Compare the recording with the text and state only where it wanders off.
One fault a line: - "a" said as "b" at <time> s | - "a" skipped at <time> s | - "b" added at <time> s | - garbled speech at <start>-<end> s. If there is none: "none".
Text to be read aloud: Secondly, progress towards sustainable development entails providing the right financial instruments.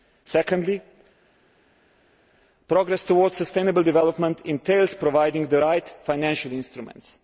none